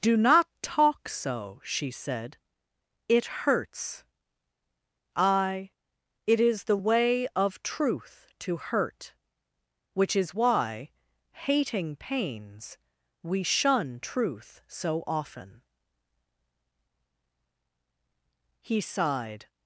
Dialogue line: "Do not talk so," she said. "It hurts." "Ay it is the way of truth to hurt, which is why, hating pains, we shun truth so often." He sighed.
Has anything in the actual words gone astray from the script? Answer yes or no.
no